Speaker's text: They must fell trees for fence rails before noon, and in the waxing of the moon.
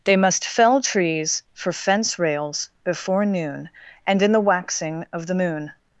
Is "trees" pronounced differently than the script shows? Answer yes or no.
no